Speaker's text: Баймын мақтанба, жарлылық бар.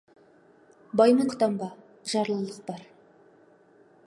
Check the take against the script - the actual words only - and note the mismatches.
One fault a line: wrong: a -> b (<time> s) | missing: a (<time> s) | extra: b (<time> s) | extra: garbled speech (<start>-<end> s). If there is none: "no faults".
no faults